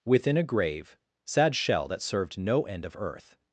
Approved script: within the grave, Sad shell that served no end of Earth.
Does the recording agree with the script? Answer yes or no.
no